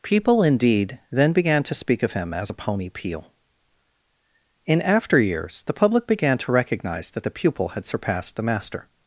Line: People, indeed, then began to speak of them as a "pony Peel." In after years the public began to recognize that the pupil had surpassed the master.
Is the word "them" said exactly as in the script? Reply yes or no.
no